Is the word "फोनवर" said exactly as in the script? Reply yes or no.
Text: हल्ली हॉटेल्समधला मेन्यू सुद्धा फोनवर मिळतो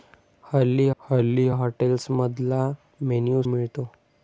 no